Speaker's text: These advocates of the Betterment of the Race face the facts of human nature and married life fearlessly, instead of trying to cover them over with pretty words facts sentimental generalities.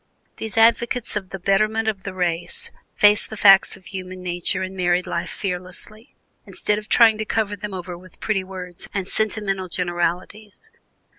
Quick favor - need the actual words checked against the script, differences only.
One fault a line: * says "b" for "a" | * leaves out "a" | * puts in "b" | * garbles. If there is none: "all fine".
* says "and" for "facts"